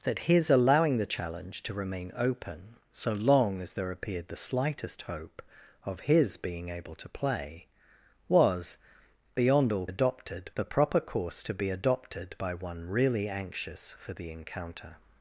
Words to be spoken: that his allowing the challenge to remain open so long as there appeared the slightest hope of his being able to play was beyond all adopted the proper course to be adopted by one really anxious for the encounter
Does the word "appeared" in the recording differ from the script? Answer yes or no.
no